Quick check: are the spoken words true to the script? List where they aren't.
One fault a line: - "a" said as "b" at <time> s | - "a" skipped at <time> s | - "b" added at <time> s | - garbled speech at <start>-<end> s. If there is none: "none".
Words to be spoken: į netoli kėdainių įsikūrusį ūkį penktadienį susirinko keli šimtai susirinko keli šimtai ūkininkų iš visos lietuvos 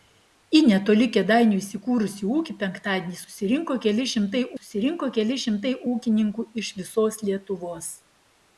none